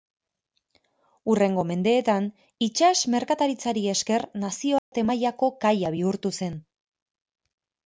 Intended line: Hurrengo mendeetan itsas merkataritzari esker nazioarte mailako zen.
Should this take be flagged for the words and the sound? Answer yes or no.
yes